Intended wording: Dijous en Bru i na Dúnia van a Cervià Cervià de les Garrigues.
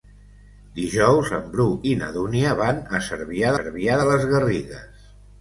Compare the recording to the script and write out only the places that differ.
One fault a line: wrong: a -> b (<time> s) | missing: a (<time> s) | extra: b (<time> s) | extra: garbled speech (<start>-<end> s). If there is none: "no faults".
no faults